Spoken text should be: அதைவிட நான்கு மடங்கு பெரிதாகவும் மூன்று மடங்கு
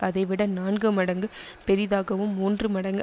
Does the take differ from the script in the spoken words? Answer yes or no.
no